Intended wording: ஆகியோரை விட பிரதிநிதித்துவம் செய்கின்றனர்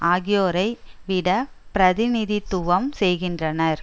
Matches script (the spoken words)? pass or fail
pass